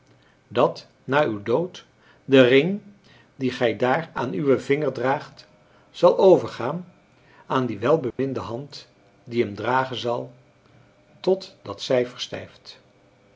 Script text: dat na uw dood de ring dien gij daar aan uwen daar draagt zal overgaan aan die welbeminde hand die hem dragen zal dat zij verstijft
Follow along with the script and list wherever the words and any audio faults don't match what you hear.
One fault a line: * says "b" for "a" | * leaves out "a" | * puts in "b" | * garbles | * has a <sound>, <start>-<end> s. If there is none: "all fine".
* says "vinger" for "daar"
* has a dropout, 8.1-8.2 s
* puts in "tot"